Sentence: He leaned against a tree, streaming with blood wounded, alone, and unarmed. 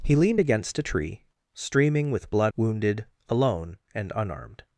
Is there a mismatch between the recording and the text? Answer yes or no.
no